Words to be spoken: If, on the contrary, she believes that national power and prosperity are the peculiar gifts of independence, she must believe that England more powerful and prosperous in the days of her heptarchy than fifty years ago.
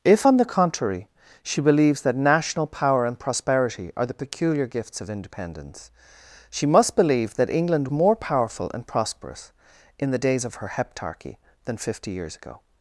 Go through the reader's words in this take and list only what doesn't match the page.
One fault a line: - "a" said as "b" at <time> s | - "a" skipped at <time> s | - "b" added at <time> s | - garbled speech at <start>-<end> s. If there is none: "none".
none